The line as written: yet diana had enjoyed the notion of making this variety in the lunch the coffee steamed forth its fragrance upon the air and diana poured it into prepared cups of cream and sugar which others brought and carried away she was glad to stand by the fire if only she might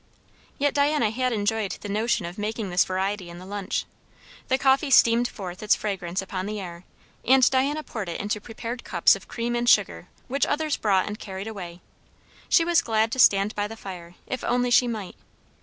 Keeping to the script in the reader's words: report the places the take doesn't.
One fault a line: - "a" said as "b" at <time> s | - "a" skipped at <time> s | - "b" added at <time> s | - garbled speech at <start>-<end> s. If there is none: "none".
none